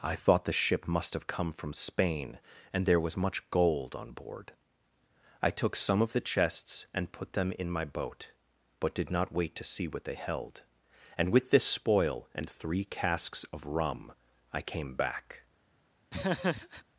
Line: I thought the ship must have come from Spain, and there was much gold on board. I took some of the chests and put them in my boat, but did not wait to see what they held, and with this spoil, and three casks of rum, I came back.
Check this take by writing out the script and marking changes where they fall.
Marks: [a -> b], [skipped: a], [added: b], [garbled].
I thought the ship must have come from Spain, and there was much gold on board. I took some of the chests and put them in my boat, but did not wait to see what they held, and with this spoil, and three casks of rum, I came back.